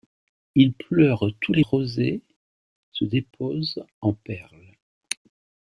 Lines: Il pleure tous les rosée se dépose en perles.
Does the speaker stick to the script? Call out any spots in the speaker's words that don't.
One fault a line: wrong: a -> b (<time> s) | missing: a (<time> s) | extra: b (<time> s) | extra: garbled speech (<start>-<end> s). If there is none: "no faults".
no faults